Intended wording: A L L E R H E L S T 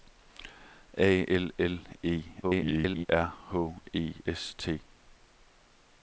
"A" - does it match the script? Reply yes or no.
yes